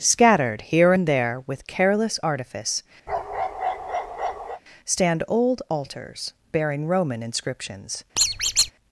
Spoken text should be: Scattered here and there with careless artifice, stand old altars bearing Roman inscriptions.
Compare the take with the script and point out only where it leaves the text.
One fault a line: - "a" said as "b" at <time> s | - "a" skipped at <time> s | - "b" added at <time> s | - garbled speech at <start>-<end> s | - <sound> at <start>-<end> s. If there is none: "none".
- bark at 3.1-4.6 s
- squeak at 8.2-8.7 s